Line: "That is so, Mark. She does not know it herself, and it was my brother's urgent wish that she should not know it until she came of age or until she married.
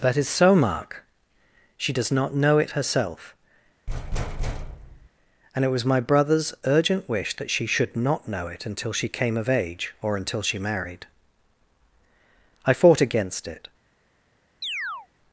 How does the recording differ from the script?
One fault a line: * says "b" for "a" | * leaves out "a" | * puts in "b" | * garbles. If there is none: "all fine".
* puts in "I fought against it"